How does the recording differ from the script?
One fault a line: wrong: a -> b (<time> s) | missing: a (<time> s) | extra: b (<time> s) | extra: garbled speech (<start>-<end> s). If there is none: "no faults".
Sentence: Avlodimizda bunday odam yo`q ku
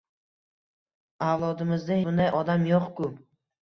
no faults